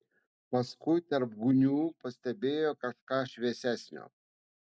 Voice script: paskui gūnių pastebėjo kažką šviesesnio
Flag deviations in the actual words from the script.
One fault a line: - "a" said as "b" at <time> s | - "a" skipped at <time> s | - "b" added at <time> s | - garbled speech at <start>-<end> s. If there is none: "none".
- "tarp" added at 1.1 s